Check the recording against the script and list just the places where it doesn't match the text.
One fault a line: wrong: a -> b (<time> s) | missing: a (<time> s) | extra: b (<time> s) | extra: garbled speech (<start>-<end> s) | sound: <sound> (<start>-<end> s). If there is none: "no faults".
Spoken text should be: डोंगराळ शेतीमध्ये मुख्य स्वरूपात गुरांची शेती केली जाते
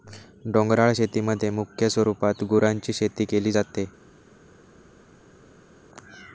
no faults